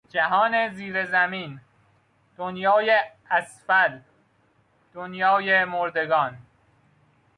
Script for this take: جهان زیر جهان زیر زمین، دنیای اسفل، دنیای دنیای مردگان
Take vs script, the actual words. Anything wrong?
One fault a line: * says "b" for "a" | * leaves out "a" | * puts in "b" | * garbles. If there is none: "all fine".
* leaves out "جهان زیر"
* leaves out "دنیای"